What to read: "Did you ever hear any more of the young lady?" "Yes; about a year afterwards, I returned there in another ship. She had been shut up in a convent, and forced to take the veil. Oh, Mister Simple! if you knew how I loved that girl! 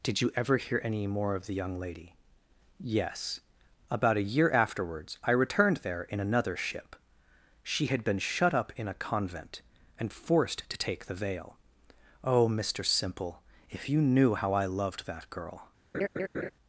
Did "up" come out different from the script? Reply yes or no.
no